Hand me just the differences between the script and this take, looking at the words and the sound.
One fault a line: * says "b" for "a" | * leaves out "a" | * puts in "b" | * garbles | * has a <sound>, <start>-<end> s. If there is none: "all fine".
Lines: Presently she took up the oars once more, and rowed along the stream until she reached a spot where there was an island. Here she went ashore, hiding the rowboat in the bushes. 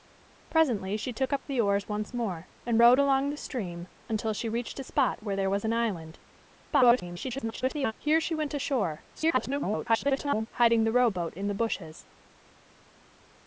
* garbles
* garbles